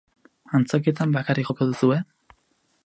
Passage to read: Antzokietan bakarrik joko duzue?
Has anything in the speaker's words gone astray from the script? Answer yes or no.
no